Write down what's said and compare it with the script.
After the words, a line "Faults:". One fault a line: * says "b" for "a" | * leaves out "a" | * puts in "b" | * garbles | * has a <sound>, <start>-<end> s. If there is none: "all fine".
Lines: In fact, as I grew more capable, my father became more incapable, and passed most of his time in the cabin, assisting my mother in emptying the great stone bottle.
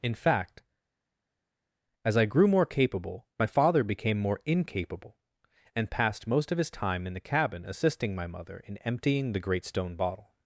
In fact, as I grew more capable, my father became more incapable, and passed most of his time in the cabin, assisting my mother in emptying the great stone bottle.
Faults:
all fine